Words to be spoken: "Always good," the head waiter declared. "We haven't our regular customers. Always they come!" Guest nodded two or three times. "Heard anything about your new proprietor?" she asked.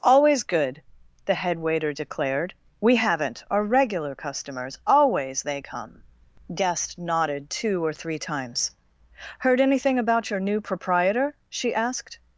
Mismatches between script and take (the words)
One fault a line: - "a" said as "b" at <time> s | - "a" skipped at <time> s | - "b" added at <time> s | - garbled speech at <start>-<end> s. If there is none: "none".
none